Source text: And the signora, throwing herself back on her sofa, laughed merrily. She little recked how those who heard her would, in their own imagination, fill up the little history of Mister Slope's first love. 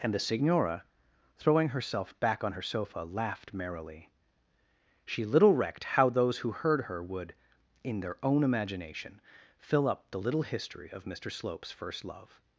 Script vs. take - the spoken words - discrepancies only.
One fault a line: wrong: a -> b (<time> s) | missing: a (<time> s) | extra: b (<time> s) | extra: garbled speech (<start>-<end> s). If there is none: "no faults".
no faults